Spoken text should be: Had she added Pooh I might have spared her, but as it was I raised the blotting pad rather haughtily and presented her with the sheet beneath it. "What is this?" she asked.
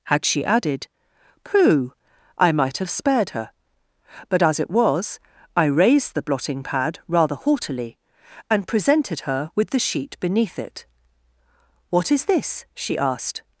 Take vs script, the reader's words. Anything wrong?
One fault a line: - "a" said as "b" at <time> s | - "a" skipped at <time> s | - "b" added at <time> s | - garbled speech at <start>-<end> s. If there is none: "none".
none